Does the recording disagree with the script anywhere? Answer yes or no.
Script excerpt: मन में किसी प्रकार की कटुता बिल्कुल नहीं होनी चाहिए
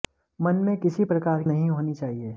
yes